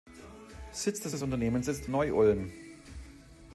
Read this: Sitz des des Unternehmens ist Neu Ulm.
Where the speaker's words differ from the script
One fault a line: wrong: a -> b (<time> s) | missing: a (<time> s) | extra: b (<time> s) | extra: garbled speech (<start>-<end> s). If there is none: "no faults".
no faults